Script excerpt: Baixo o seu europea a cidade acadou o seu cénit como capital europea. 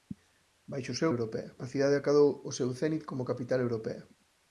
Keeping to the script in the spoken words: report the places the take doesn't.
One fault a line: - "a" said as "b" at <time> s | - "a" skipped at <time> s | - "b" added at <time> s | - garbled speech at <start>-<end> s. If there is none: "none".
none